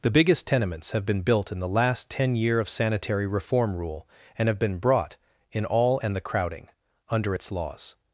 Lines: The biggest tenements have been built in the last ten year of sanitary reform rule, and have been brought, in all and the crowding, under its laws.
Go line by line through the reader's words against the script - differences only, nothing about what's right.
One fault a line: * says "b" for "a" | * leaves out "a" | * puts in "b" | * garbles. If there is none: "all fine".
all fine